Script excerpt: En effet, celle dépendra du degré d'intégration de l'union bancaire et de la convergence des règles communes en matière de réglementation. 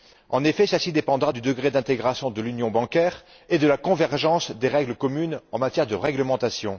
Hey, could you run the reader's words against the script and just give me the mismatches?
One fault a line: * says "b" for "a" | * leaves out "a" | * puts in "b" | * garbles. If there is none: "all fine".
* puts in "ci"